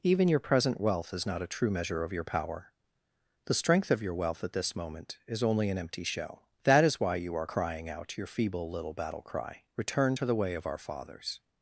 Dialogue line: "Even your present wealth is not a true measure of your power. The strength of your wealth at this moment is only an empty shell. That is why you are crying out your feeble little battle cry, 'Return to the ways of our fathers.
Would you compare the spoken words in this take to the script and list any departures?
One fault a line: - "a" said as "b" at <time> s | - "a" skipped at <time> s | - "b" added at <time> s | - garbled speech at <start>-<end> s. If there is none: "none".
- "ways" said as "way" at 10.4 s